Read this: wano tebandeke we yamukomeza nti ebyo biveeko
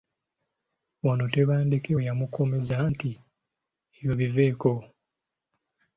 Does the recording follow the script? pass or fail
pass